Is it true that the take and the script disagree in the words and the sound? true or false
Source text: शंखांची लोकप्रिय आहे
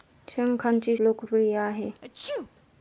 true